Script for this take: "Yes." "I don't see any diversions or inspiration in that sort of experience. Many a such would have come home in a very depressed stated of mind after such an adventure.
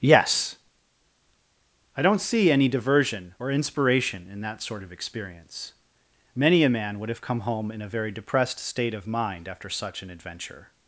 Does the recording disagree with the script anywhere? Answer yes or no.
yes